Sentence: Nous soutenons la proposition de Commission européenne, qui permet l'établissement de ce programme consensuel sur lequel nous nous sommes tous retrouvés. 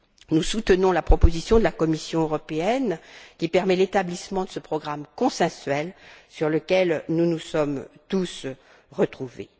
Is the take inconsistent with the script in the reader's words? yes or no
yes